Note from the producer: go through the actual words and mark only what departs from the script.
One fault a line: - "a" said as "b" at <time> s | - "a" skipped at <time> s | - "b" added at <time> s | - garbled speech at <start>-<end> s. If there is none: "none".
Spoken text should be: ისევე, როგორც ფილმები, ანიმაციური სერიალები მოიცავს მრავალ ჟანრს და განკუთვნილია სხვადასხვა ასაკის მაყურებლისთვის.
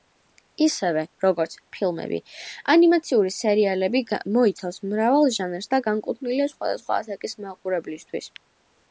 none